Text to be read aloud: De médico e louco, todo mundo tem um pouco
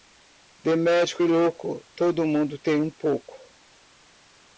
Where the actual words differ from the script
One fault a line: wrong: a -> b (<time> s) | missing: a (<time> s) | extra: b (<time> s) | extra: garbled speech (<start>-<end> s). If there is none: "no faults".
no faults